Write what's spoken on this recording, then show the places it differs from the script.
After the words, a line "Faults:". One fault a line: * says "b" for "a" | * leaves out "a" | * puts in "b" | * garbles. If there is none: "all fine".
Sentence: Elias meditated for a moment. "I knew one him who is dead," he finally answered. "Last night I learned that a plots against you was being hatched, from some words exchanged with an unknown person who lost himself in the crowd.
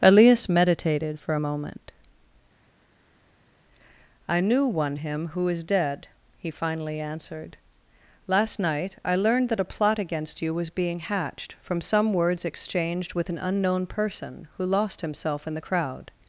Elias meditated for a moment. "I knew one him who is dead," he finally answered. "Last night I learned that a plot against you was being hatched, from some words exchanged with an unknown person who lost himself in the crowd.
Faults:
* says "plot" for "plots"